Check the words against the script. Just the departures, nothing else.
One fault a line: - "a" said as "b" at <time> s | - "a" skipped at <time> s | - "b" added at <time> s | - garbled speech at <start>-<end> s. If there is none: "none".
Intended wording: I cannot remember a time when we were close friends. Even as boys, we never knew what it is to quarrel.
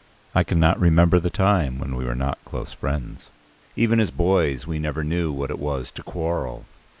- "a" said as "the" at 1.2 s
- "not" added at 2.1 s
- "is" said as "was" at 5.6 s